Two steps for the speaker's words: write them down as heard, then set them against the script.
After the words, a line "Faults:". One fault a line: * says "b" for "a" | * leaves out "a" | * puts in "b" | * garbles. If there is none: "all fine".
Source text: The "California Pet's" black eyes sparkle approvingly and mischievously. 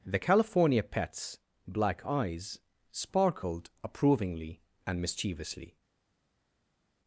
The "California Pet's" black eyes sparkled approvingly and mischievously.
Faults:
* says "sparkled" for "sparkle"